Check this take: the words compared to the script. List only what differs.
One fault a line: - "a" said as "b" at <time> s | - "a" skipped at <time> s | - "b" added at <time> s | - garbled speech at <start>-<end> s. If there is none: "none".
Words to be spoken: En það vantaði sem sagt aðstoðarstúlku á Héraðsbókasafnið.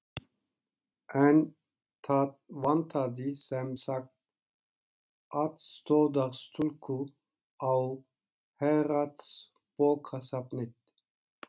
none